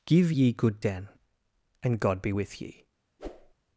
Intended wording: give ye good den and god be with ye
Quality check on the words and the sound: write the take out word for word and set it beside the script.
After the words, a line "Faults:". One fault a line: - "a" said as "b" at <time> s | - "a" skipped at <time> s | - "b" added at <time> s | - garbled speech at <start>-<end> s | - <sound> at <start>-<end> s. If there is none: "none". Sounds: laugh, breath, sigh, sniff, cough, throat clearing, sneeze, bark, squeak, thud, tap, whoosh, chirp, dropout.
give ye good den and god be with ye
Faults:
- whoosh at 3.2-3.5 s